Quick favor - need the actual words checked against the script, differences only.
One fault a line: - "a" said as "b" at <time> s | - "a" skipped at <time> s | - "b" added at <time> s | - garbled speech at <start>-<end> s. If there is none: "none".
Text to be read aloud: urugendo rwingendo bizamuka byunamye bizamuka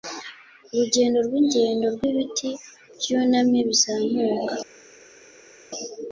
- "bizamuka" said as "rwibiti" at 1.9 s